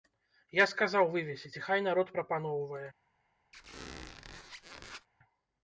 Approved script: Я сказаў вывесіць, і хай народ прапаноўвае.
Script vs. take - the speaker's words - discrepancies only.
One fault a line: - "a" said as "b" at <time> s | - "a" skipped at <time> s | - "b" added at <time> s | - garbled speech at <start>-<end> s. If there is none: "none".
none